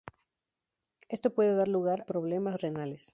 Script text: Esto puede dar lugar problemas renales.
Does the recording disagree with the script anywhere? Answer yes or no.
no